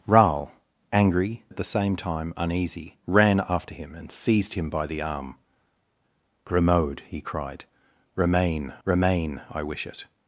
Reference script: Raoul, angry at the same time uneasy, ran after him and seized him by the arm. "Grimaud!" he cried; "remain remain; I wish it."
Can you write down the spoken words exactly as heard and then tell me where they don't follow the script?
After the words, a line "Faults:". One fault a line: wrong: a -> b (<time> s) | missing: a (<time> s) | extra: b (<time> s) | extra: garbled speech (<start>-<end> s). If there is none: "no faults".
Raoul, angry at the same time uneasy, ran after him and seized him by the arm. "Grimaud!" he cried; "remain remain; I wish it."
Faults:
no faults